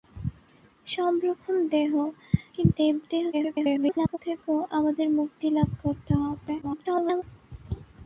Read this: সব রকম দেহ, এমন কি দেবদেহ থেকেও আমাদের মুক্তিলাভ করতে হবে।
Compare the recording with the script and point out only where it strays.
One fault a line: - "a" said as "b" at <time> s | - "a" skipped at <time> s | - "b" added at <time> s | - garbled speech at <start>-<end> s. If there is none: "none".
- "এমন" skipped at 1.9 s
- garbled speech at 3.3-4.2 s
- garbled speech at 6.6-7.2 s